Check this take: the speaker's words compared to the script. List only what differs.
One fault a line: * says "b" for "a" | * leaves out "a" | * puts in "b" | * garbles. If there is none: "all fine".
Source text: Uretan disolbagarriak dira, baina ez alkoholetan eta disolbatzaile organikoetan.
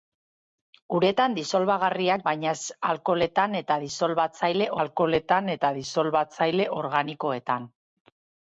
* leaves out "dira"
* puts in "alkoholetan eta disolbatzaile"